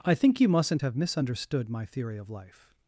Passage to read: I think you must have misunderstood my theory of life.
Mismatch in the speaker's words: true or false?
true